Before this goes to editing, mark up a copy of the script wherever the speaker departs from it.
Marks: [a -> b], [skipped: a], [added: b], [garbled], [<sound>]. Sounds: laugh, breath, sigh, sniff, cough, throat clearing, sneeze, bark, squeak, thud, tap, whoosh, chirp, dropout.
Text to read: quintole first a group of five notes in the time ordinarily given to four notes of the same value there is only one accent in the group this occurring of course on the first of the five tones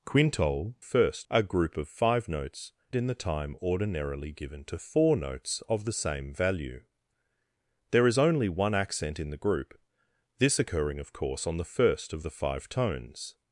quintole first a group of five notes in the time ordinarily given to four notes of the same value there is only one accent in the group this occurring of course on the first of the five tones